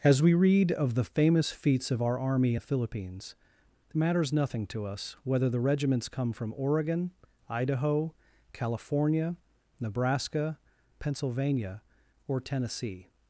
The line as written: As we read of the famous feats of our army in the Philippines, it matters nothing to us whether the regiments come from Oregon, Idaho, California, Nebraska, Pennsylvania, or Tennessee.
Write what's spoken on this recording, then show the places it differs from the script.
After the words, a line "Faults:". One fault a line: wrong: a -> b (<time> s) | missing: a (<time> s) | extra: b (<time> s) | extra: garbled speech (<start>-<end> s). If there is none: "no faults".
As we read of the famous feats of our army the Philippines, matters nothing to us whether the regiments come from Oregon, Idaho, California, Nebraska, Pennsylvania, or Tennessee.
Faults:
missing: in (2.5 s)
missing: it (3.3 s)